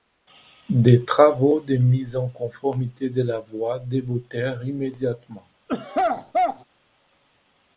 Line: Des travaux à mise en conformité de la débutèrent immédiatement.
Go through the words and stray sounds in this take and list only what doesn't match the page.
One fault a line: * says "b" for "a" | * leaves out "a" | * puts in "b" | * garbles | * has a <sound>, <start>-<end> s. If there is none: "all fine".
* says "de" for "à"
* puts in "voie"
* has a throat clearing, 5.7-6.6 s